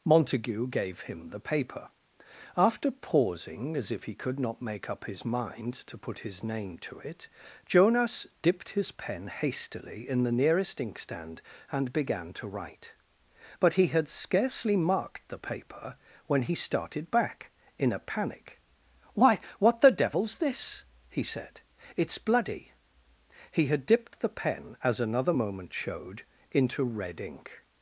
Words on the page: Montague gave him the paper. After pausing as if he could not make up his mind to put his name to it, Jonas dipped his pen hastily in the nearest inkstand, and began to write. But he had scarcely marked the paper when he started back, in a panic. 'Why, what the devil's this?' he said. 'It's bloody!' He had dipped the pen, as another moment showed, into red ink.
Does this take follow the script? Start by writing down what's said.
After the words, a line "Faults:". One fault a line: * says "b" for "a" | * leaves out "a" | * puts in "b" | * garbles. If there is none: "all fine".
Montague gave him the paper. After pausing as if he could not make up his mind to put his name to it, Jonas dipped his pen hastily in the nearest inkstand, and began to write. But he had scarcely marked the paper when he started back, in a panic. 'Why, what the devil's this?' he said. 'It's bloody!' He had dipped the pen, as another moment showed, into red ink.
Faults:
all fine